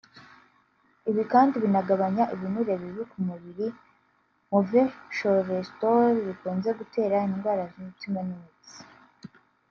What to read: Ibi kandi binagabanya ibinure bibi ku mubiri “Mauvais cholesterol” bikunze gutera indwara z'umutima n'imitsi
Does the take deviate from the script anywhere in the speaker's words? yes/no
no